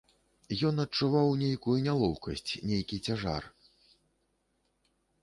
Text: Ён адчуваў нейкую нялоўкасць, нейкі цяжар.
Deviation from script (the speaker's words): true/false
false